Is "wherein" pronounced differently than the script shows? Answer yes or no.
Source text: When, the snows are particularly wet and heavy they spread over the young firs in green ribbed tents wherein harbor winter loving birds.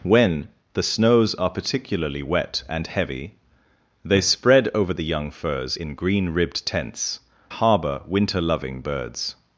yes